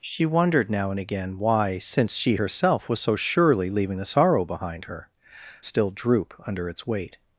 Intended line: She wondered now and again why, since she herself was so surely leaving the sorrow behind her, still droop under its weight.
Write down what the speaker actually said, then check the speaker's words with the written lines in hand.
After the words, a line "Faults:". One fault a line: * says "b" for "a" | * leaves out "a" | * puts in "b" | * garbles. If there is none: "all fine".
She wondered now and again why, since she herself was so surely leaving the sorrow behind her, still droop under its weight.
Faults:
all fine